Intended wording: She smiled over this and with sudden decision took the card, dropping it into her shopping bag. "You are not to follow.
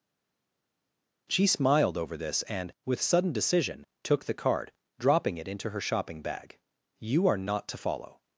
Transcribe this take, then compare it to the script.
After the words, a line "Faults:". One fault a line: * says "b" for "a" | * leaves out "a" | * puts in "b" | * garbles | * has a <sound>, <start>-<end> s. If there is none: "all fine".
She smiled over this and with sudden decision took the card, dropping it into her shopping bag. "You are not to follow.
Faults:
all fine